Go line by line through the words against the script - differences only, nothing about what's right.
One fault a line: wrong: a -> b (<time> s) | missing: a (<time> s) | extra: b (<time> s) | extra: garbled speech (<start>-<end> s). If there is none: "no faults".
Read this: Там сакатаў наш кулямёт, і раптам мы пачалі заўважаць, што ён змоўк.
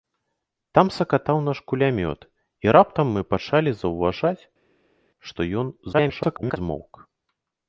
extra: garbled speech (5.9-6.6 s)